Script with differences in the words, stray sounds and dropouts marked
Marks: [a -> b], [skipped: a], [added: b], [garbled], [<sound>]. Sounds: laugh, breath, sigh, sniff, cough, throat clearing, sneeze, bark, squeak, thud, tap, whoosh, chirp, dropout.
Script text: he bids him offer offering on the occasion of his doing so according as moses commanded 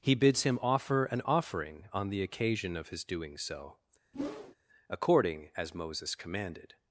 he bids him offer [added: an] offering on the occasion of his doing so [whoosh] according as moses commanded